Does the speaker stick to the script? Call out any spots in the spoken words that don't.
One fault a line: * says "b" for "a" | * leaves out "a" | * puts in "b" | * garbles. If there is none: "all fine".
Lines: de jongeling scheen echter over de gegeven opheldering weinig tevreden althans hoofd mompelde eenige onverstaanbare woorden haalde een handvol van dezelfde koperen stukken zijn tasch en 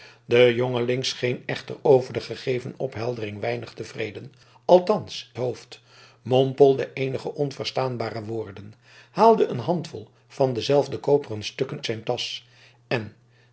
all fine